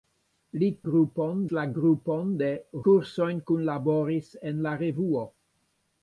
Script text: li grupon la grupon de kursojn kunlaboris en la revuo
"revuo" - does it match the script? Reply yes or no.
yes